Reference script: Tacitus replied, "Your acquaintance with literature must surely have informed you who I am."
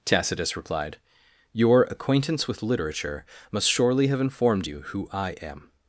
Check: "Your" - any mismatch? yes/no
no